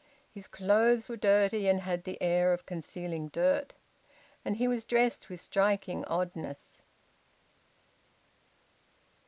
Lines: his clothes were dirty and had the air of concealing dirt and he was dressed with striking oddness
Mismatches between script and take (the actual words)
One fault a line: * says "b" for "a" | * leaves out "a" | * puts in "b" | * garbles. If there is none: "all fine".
all fine